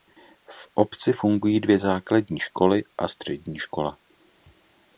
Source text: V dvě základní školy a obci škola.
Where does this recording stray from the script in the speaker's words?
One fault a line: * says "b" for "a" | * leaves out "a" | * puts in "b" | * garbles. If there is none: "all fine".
* puts in "obci fungují"
* says "střední" for "obci"